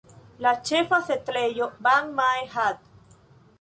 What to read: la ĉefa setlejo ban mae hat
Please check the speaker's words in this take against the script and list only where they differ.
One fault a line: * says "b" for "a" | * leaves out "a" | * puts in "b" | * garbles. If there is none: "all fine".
all fine